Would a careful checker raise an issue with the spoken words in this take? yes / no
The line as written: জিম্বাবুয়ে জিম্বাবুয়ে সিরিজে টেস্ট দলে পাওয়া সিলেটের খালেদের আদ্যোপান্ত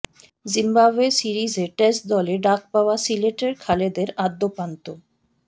yes